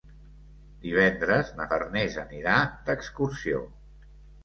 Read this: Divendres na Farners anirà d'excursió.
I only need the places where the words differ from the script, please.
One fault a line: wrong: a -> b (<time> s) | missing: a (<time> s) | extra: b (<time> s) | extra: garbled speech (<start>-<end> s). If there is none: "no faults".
no faults